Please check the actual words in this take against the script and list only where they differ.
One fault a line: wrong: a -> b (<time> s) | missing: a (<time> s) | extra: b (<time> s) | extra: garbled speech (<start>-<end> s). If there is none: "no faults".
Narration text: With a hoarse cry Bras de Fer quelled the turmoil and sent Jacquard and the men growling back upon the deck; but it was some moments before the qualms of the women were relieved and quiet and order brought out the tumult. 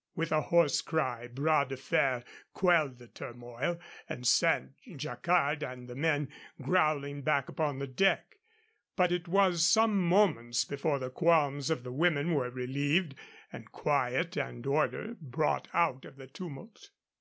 extra: of (16.0 s)